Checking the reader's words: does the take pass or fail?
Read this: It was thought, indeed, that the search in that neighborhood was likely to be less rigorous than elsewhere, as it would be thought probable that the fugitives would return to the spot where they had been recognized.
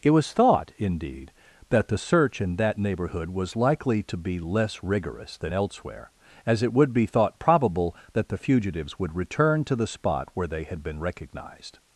pass